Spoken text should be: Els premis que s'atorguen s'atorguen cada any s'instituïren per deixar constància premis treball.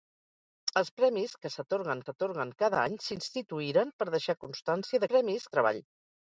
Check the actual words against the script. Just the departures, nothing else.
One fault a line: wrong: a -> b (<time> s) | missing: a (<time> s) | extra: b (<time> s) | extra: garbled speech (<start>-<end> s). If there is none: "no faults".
no faults